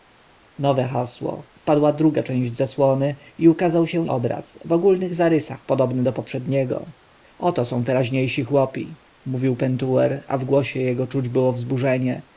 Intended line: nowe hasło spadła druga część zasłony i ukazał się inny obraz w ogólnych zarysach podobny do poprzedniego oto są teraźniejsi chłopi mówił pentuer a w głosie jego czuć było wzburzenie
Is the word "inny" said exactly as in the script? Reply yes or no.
no